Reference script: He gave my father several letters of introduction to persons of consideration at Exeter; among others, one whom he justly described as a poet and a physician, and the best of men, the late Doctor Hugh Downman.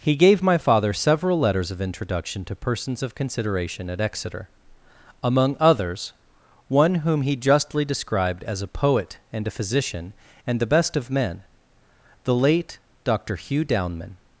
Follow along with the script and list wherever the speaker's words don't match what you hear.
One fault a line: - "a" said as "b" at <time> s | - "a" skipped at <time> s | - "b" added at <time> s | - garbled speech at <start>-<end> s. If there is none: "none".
none